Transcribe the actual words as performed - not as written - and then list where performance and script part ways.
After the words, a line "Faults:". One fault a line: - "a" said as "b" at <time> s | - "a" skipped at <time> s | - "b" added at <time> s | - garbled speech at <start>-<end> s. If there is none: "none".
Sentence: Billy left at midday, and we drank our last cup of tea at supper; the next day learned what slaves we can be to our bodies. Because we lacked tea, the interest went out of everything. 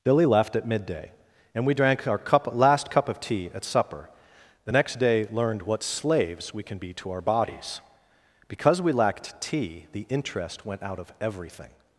Billy left at midday, and we drank our cup last cup of tea at supper; the next day learned what slaves we can be to our bodies. Because we lacked tea, the interest went out of everything.
Faults:
- "cup" added at 2.2 s